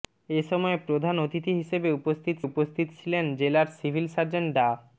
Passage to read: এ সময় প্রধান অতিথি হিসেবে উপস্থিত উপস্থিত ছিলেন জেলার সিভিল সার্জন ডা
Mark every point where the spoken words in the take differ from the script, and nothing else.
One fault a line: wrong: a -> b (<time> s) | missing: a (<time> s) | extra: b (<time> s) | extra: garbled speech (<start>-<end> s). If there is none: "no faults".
no faults